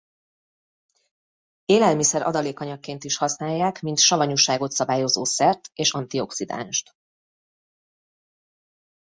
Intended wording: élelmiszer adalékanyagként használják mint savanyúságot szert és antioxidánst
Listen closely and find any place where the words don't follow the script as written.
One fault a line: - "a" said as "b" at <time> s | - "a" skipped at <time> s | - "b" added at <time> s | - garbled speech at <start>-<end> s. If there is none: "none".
- "is" added at 3.0 s
- "szabályozó" added at 4.7 s